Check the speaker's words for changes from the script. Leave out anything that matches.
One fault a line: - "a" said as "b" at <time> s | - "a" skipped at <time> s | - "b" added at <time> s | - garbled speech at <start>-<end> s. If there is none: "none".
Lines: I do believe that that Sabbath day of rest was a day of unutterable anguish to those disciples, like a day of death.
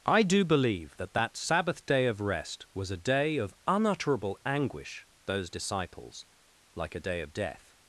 - "to" skipped at 5.1 s